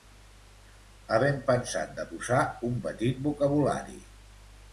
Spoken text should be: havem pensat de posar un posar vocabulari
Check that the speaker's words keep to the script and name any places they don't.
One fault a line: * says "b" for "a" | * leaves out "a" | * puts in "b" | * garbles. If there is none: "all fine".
* says "petit" for "posar"